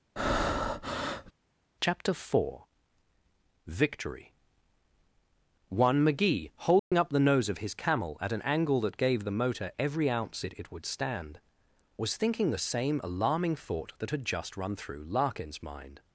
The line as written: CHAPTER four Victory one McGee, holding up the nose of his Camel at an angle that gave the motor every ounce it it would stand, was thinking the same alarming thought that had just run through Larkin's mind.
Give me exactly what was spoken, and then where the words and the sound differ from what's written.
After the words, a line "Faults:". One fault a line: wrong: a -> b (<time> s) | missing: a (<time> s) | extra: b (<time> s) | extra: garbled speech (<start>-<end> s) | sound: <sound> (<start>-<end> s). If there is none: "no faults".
CHAPTER four Victory one McGee, holding up the nose of his Camel at an angle that gave the motor every ounce it it would stand, was thinking the same alarming thought that had just run through Larkin's mind.
Faults:
sound: breath (0.2-1.3 s)
sound: dropout (6.8-6.9 s)